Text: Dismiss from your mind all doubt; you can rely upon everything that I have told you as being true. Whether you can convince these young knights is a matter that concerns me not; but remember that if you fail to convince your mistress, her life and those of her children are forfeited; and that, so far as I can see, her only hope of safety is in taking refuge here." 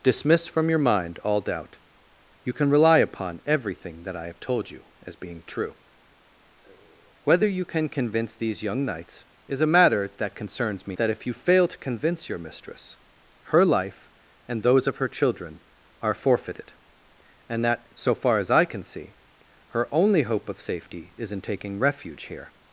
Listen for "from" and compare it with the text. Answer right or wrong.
right